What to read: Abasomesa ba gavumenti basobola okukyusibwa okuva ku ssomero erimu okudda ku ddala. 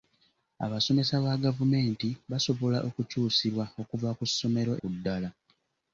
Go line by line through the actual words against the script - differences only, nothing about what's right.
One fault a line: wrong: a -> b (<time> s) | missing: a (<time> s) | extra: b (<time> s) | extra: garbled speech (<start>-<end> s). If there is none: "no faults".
missing: erimu okudda (4.7 s)